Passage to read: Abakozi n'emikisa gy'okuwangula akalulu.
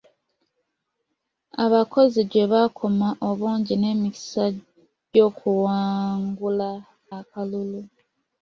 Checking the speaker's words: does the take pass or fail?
fail